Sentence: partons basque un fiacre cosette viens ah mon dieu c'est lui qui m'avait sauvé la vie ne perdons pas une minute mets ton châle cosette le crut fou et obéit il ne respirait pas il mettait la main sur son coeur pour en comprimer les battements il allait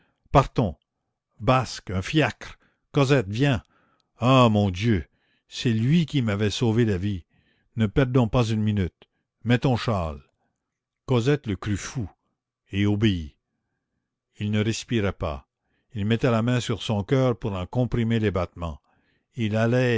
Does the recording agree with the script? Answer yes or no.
yes